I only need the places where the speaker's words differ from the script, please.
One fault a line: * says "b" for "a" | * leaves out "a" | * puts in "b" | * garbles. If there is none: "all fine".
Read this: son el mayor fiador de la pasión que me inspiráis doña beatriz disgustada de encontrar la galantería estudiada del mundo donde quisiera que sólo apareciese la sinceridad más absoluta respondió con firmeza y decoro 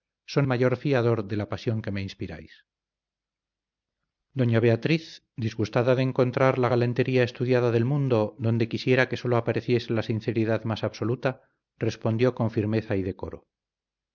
* leaves out "el"